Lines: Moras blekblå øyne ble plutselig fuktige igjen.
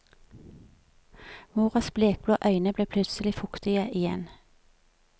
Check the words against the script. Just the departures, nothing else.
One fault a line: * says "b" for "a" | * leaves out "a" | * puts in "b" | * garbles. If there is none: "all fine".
all fine